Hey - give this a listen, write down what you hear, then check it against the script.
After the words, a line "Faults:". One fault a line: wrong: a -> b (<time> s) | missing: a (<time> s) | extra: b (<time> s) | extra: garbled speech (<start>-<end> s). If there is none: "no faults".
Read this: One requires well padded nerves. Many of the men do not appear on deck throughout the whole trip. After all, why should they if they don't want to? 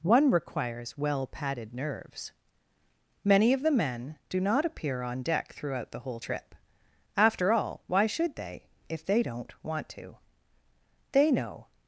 One requires well padded nerves. Many of the men do not appear on deck throughout the whole trip. After all, why should they if they don't want to? They know
Faults:
extra: They know (11.1 s)